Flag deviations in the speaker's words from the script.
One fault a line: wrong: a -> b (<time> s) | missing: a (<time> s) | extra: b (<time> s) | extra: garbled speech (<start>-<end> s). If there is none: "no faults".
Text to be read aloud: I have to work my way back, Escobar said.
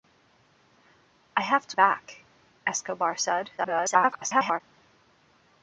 missing: work my way (1.8 s)
extra: garbled speech (3.6-4.6 s)